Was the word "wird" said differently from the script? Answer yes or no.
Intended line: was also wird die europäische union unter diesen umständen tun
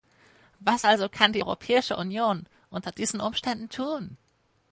yes